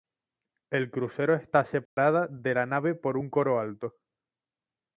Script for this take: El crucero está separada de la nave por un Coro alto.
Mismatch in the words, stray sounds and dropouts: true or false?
true